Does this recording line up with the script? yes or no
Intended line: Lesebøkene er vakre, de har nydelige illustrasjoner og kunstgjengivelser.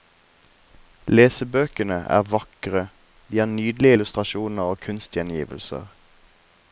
yes